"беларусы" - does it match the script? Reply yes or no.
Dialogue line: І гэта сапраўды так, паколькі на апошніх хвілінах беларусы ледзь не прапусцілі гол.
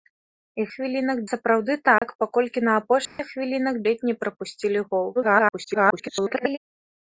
no